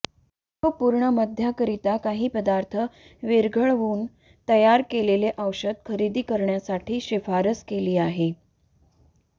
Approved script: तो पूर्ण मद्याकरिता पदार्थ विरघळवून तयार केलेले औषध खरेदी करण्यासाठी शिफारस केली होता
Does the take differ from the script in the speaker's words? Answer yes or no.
yes